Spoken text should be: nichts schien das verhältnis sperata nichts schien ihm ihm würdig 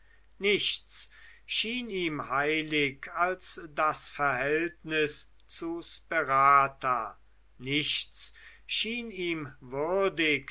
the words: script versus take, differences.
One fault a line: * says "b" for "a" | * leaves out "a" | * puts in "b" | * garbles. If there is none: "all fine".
* puts in "ihm heilig als"
* puts in "zu"
* leaves out "ihm"